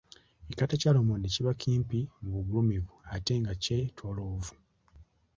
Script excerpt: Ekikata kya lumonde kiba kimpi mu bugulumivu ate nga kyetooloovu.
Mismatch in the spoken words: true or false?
false